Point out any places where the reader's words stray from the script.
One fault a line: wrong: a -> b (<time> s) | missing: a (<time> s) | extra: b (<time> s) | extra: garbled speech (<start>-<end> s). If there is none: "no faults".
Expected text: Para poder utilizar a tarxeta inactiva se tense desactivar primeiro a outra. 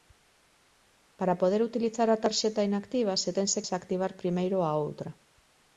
no faults